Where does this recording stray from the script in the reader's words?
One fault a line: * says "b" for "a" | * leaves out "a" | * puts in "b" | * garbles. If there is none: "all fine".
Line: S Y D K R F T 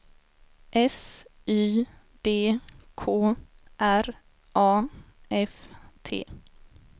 * puts in "A"